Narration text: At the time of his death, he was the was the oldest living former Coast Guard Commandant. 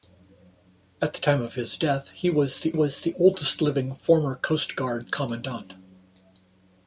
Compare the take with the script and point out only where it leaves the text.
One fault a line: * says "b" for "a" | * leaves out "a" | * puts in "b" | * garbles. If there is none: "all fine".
all fine